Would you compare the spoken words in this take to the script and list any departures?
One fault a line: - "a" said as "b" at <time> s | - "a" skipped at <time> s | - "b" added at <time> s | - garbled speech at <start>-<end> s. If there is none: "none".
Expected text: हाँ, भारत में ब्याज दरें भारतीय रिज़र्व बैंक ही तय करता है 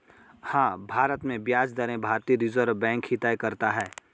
none